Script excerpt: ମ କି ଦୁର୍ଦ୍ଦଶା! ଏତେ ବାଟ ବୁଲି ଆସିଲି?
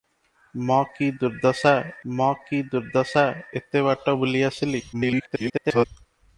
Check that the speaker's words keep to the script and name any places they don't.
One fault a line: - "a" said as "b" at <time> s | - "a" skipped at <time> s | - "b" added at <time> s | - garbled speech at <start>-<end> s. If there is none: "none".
- "ମ କି ଦୁର୍ଦ୍ଦଶା" added at 2.1 s
- garbled speech at 4.9-5.9 s